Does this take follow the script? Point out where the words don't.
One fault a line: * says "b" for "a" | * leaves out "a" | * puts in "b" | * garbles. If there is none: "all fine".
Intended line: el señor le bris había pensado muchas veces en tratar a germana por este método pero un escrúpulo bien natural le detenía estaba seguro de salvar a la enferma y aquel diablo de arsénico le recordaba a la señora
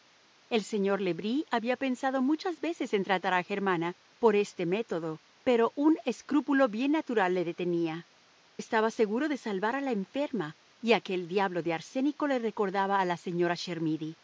all fine